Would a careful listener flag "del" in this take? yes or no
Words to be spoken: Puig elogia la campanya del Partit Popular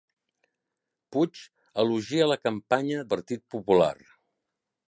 yes